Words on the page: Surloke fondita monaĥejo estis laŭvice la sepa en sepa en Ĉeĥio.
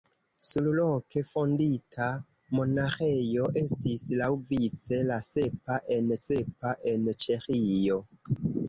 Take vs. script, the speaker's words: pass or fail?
pass